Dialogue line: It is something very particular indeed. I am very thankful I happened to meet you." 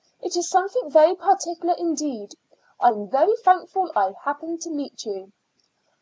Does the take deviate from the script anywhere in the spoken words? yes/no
no